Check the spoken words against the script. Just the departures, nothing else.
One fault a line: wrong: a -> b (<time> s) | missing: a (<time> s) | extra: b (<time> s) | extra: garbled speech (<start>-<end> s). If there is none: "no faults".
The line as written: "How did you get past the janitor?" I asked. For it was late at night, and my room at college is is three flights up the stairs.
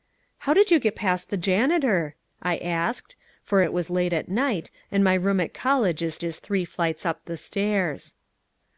no faults